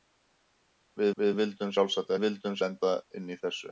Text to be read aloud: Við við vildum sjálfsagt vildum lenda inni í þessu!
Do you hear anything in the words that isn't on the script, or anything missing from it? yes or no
no